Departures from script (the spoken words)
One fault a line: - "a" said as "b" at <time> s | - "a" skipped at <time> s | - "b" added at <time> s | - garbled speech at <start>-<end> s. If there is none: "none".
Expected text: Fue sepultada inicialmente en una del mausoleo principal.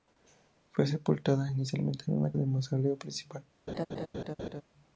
none